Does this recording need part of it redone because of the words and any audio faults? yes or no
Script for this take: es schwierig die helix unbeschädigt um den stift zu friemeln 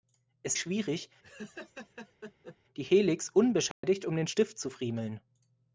yes